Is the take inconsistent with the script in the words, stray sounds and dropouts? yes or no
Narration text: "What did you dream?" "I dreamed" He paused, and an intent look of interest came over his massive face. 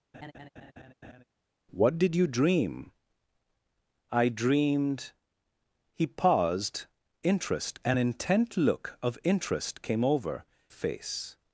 yes